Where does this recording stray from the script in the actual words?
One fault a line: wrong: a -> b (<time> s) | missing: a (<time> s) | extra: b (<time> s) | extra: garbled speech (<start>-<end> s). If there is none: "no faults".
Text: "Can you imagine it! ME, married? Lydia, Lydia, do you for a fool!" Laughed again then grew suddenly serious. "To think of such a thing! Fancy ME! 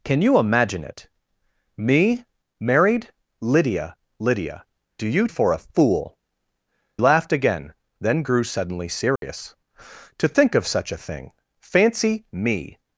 no faults